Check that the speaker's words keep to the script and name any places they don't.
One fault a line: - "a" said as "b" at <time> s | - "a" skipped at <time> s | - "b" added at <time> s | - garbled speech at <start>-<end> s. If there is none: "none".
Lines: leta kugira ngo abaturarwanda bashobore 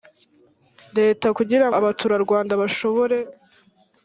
- "ngo" skipped at 1.7 s